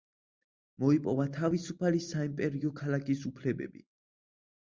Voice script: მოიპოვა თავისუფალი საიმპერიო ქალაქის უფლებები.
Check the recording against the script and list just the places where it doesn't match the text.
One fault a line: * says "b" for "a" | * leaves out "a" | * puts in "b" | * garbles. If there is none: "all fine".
all fine